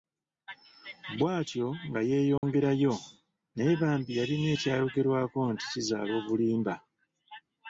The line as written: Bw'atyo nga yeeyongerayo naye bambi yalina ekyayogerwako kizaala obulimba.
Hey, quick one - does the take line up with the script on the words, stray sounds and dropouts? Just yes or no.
no